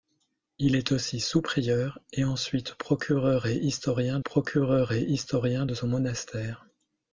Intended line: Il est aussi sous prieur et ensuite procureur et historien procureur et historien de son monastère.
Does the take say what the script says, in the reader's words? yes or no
yes